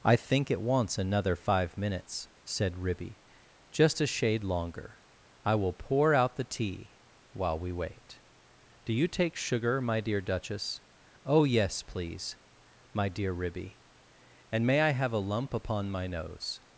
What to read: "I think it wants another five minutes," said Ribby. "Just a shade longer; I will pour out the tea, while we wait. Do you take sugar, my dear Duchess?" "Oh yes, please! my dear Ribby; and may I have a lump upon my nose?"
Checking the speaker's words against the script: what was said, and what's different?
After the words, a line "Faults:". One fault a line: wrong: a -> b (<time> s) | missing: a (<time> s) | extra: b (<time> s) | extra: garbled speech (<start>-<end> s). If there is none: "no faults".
"I think it wants another five minutes," said Ribby. "Just a shade longer; I will pour out the tea, while we wait. Do you take sugar, my dear Duchess?" "Oh yes, please! my dear Ribby; and may I have a lump upon my nose?"
Faults:
no faults